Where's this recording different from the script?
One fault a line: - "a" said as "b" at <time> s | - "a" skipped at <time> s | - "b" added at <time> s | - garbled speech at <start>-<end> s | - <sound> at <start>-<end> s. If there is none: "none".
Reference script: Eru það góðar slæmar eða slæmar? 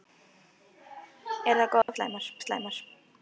- dropout at 1.8-1.9 s